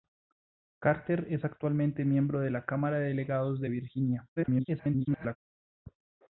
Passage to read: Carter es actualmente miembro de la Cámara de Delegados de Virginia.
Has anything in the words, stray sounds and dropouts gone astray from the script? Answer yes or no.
yes